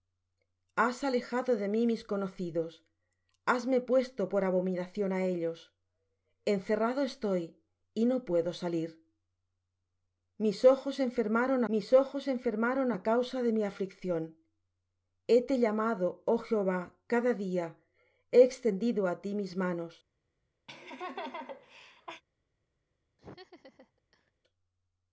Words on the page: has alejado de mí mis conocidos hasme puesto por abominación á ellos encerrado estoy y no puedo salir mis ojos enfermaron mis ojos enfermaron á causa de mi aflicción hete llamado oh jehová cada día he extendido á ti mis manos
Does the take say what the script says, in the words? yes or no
yes